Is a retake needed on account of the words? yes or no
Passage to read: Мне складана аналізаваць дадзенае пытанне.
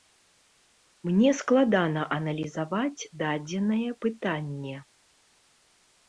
no